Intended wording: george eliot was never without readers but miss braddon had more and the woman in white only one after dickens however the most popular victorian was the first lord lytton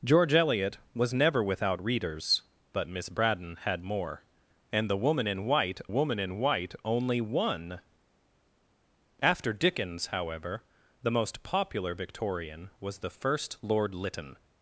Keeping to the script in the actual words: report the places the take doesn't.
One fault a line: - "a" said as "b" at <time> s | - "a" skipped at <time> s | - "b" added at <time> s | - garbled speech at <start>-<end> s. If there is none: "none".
- "woman in white" added at 5.9 s